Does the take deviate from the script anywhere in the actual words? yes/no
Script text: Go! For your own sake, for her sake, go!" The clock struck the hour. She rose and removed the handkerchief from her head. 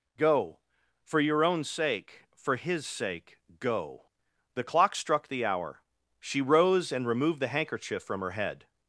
yes